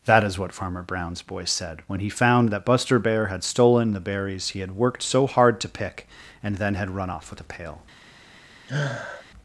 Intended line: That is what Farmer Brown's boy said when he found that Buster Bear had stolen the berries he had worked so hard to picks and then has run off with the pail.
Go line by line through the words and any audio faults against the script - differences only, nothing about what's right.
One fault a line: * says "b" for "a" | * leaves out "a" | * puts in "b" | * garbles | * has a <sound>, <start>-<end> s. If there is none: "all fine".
* says "pick" for "picks"
* says "had" for "has"
* has a sniff, 8.7-9.3 s